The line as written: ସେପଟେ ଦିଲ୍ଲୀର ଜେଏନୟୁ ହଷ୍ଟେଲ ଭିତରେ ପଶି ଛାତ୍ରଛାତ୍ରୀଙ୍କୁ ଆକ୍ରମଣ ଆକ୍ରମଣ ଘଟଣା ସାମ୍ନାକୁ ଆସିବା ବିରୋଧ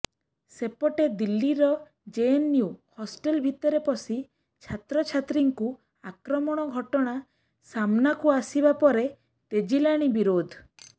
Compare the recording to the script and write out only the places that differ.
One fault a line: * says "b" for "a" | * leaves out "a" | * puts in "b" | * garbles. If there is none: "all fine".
* leaves out "ଆକ୍ରମଣ"
* puts in "ପରେ ତେଜିଲାଣି"